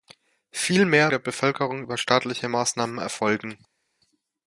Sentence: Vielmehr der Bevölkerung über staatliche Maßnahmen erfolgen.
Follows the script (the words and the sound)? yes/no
yes